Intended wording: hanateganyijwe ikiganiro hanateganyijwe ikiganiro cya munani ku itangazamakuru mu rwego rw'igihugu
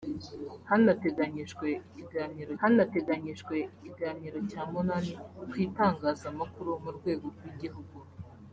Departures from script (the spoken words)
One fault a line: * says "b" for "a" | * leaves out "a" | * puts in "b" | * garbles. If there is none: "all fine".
all fine